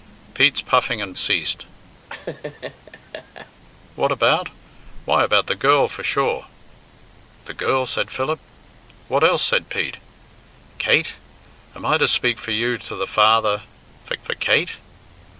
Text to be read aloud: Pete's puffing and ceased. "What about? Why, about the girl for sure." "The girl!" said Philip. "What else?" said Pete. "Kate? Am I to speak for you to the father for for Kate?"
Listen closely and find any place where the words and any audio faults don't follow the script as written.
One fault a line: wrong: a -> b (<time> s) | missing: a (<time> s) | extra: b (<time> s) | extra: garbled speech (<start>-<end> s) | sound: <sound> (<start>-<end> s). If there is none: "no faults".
sound: laugh (2.1-3.5 s)